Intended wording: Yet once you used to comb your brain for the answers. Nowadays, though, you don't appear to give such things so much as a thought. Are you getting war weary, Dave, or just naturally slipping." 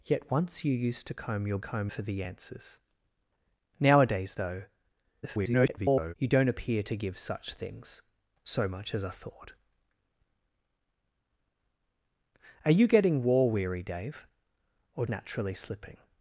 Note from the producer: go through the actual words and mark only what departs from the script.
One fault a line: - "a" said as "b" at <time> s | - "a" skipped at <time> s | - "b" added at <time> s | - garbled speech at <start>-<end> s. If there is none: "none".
- "brain" said as "comb" at 1.6 s
- garbled speech at 5.2-6.1 s
- "just" skipped at 15.1 s